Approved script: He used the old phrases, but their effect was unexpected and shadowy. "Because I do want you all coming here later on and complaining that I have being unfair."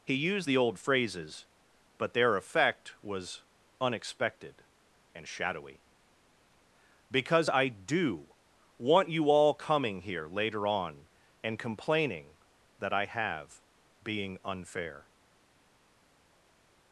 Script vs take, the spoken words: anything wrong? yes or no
no